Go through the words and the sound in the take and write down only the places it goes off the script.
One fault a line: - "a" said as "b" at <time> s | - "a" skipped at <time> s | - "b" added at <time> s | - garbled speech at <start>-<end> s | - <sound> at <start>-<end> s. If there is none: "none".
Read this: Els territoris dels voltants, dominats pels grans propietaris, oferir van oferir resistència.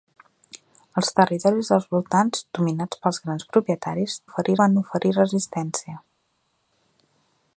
none